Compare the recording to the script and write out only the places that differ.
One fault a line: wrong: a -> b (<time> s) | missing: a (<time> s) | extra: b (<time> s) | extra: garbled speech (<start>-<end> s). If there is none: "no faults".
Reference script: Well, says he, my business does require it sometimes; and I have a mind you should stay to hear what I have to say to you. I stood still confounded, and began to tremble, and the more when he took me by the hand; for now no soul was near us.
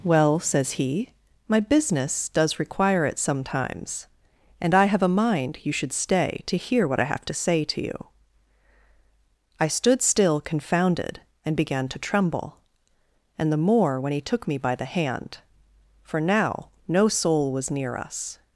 no faults